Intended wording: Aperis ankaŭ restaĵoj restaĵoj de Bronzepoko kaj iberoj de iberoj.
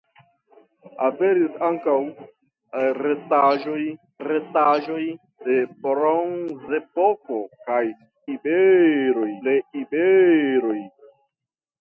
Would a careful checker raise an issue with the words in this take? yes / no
no